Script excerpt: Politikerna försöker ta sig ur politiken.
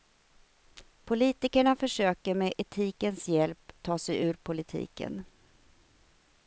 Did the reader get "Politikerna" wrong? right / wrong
right